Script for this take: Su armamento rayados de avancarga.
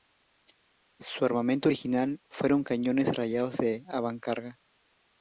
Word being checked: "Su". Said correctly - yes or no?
yes